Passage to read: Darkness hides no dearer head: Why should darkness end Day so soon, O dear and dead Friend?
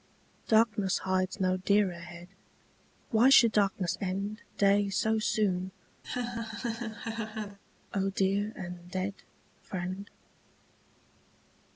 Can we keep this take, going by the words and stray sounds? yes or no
no